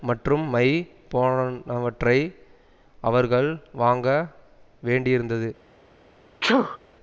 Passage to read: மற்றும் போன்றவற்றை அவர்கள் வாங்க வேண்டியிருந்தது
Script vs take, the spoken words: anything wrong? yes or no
yes